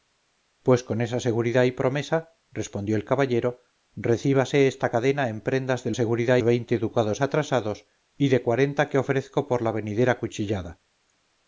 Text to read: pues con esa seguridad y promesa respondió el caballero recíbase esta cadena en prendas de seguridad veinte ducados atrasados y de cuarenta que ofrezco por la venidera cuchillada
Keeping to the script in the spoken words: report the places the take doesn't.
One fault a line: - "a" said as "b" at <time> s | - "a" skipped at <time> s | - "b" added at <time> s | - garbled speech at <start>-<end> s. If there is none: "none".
none